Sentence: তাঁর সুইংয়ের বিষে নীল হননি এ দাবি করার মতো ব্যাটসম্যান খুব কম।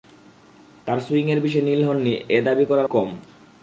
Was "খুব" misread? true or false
true